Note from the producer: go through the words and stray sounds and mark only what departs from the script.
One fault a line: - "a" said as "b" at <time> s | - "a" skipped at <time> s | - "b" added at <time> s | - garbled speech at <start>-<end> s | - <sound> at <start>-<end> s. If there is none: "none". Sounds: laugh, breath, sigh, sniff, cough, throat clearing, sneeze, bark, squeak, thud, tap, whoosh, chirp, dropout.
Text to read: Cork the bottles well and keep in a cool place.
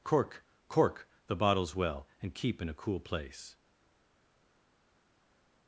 - "cork" added at 0.7 s